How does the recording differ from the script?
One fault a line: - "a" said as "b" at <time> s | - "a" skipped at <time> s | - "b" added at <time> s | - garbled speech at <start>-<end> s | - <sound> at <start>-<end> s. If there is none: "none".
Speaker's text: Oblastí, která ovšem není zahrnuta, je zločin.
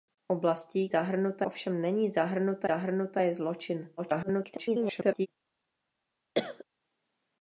- "která" said as "zahrnuta" at 0.9 s
- "zahrnuta" added at 2.6 s
- garbled speech at 4.0-5.3 s
- cough at 6.3-6.6 s